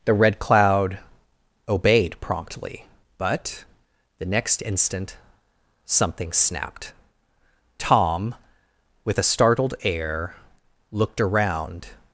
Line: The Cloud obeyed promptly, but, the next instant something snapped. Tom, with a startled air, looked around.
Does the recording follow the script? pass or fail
fail